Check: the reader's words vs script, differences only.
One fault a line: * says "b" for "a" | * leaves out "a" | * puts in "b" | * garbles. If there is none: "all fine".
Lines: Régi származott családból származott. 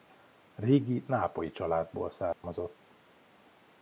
* says "nápolyi" for "származott"